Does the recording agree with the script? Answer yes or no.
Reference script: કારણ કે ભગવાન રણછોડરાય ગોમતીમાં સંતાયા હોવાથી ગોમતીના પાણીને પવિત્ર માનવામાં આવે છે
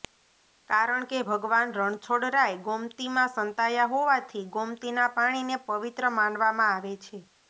yes